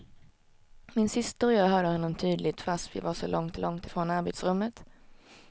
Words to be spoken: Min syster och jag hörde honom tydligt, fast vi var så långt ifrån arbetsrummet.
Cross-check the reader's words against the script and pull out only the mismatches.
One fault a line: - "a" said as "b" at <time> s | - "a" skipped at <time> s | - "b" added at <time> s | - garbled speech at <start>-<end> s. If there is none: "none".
- "långt" added at 3.6 s